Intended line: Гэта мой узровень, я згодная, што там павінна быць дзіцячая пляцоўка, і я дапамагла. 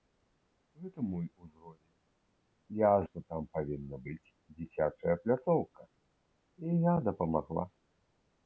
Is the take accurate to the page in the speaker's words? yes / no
no